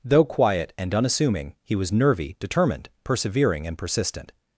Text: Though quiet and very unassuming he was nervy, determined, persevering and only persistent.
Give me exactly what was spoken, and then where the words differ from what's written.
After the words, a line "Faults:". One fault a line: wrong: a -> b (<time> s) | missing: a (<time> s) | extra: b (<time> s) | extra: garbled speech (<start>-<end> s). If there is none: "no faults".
Though quiet and unassuming he was nervy, determined, persevering and persistent.
Faults:
missing: very (0.9 s)
missing: only (3.8 s)